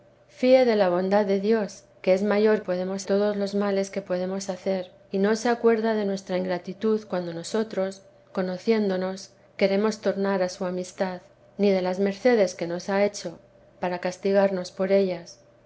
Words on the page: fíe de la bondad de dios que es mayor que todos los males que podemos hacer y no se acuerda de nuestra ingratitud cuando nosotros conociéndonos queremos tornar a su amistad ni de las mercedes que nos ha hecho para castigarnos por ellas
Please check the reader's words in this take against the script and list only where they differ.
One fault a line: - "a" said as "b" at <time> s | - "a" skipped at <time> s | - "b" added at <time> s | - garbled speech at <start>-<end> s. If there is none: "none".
- "que" said as "podemos" at 2.6 s